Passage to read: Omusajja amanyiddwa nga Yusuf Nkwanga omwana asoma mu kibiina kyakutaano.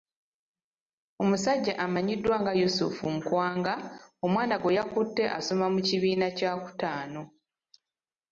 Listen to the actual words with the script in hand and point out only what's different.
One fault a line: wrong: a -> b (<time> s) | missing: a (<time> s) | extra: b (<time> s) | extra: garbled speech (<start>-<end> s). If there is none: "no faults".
extra: gwe yakutte (4.6 s)